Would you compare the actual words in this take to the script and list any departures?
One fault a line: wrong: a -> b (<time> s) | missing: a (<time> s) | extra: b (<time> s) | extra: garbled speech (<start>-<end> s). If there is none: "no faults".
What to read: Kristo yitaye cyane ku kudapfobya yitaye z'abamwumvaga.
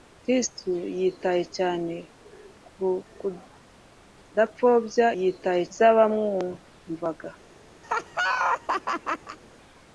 no faults